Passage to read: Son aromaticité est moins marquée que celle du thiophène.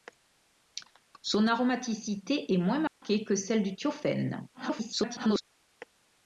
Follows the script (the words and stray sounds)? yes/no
no